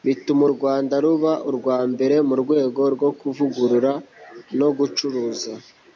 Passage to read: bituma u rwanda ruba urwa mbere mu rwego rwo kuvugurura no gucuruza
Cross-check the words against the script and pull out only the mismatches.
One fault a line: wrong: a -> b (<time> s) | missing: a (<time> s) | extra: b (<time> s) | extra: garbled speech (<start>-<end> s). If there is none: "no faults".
no faults